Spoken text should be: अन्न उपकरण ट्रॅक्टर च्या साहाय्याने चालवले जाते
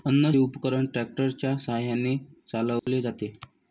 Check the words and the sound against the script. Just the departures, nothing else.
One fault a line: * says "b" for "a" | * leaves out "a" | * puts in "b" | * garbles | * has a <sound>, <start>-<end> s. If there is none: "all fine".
* has a dropout, 2.8-2.9 s